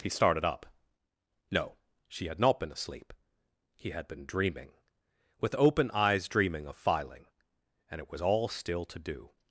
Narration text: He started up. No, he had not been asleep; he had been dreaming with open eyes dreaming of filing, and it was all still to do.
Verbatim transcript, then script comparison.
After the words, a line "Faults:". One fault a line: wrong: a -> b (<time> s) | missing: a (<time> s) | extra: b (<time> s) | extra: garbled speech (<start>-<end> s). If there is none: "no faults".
He started up. No, she had not been asleep; he had been dreaming with open eyes dreaming of filing, and it was all still to do.
Faults:
wrong: he -> she (2.1 s)